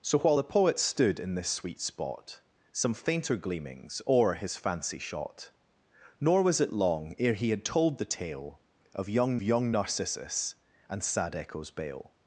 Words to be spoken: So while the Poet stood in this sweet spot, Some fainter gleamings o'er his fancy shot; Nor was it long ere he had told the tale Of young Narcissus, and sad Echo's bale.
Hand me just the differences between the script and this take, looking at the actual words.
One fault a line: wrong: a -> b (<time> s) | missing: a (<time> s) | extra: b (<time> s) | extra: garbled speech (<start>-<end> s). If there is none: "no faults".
extra: young (9.4 s)